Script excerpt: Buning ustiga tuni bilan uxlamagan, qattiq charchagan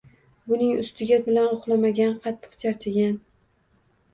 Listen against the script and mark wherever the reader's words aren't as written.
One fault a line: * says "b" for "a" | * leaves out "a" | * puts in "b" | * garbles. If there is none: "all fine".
* leaves out "tuni"